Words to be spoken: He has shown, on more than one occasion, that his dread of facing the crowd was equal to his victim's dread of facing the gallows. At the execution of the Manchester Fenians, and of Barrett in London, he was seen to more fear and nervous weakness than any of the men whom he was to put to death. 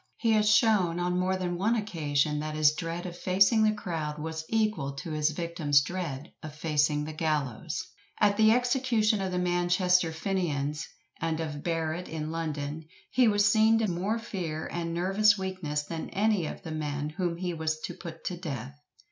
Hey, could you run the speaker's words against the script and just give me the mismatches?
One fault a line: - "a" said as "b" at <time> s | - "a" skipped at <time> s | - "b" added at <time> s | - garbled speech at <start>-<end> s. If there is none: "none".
none